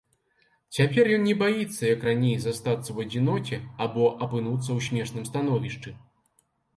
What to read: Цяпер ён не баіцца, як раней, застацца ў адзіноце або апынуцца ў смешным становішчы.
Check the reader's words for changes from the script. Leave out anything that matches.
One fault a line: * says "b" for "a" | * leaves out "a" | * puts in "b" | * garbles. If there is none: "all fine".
all fine